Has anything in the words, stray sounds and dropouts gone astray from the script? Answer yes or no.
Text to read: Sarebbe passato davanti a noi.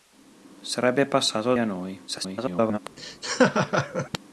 yes